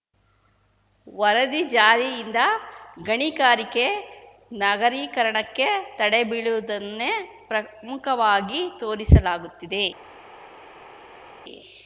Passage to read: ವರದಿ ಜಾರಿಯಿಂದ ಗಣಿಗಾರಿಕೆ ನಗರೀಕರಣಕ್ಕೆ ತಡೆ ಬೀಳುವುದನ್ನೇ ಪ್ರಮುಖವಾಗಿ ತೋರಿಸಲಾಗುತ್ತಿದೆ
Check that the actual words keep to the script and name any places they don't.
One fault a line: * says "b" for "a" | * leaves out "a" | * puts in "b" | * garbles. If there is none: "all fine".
all fine